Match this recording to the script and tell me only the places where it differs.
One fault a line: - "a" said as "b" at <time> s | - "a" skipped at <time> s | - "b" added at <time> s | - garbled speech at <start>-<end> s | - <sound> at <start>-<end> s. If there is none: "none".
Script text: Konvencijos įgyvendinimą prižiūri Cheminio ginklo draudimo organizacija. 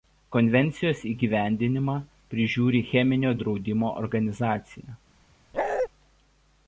- "ginklo" skipped at 3.4 s
- bark at 5.5-5.9 s